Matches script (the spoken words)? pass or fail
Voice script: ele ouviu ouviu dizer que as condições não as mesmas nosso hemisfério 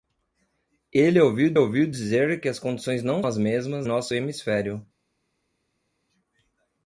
pass